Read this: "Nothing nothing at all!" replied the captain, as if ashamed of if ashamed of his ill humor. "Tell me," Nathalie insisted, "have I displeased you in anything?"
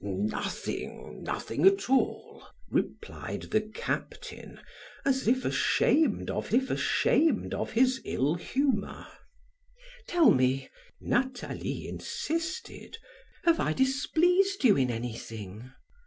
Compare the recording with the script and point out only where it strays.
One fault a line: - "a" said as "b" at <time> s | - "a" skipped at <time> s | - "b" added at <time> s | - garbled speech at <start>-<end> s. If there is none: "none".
none